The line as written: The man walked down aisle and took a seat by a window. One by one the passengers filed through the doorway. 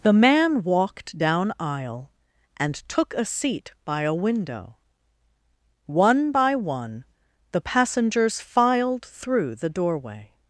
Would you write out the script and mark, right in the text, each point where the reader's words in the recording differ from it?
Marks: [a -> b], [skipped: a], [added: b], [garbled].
The man walked down aisle and took a seat by a window. One by one the passengers filed through the doorway.